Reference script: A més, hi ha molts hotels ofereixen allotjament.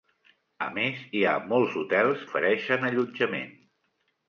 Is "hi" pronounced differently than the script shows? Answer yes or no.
no